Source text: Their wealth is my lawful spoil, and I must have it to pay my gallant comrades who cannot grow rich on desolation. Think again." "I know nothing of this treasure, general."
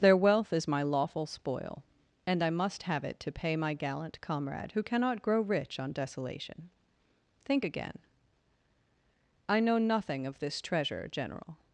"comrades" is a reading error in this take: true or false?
true